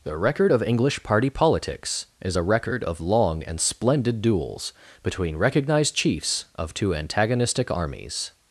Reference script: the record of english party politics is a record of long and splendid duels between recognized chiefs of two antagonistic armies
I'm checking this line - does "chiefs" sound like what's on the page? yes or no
yes